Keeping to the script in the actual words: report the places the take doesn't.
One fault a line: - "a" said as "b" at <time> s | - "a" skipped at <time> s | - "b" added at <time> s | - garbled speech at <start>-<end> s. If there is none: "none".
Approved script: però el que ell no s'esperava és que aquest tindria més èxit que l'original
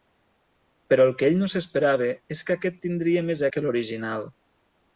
- "èxit" skipped at 3.5 s